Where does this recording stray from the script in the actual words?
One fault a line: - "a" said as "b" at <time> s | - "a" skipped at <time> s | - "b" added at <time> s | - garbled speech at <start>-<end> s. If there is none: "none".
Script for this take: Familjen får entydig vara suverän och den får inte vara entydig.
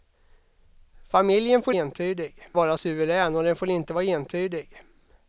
none